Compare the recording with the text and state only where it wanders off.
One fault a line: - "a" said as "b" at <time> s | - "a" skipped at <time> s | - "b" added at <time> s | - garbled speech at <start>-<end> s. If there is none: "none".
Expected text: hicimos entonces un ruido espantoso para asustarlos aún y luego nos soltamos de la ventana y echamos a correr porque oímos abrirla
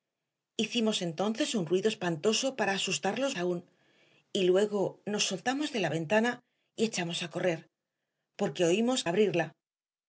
none